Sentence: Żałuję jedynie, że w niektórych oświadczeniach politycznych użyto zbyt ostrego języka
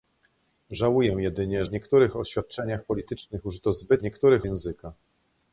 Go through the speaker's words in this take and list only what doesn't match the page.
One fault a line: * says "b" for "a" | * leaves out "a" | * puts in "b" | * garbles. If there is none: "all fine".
* leaves out "że"
* says "niektórych" for "ostrego"